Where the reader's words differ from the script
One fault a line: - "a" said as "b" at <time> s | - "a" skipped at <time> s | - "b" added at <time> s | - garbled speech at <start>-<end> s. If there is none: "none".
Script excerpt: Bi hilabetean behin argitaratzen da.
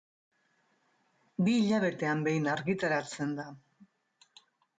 none